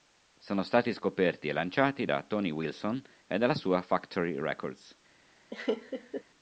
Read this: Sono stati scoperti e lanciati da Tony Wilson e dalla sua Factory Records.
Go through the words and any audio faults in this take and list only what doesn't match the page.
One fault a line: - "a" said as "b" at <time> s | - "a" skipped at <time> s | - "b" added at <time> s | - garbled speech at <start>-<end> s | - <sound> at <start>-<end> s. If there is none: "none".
- laugh at 5.5-6.2 s